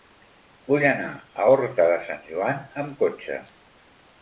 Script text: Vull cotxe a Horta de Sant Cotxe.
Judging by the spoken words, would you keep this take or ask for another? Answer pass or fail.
fail